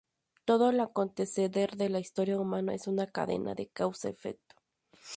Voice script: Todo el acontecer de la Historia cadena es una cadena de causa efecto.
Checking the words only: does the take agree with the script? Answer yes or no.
no